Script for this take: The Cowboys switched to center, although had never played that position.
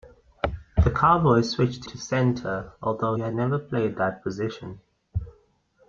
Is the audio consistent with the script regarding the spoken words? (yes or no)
yes